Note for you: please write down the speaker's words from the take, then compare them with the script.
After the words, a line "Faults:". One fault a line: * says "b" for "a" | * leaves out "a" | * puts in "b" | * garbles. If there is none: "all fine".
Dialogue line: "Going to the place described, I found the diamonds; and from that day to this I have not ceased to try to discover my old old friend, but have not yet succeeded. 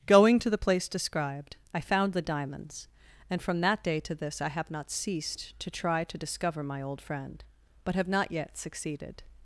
"Going to the place described, I found the diamonds; and from that day to this I have not ceased to try to discover my old friend, but have not yet succeeded.
Faults:
* leaves out "old"